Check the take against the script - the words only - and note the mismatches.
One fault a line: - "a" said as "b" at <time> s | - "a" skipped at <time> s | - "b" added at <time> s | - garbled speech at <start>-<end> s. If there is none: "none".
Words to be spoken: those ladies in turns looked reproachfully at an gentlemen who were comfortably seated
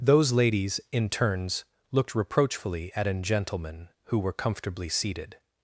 none